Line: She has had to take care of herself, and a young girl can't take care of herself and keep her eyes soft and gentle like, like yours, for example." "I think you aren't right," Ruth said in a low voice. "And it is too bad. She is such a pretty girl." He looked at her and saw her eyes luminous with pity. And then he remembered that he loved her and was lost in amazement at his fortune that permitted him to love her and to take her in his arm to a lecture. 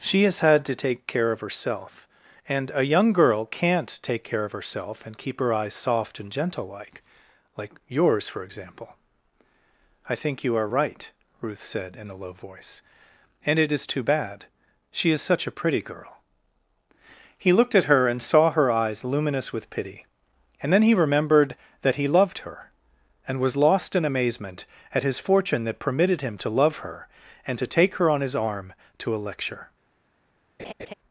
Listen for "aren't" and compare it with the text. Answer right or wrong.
wrong